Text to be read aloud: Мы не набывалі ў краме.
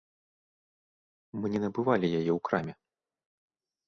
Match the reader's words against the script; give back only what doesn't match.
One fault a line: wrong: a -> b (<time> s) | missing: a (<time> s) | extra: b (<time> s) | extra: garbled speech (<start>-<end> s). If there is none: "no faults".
extra: яе (2.2 s)